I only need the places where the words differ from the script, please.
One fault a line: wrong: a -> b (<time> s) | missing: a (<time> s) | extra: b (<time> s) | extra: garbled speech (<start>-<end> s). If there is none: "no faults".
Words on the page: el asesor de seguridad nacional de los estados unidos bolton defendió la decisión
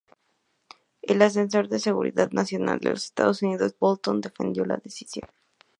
no faults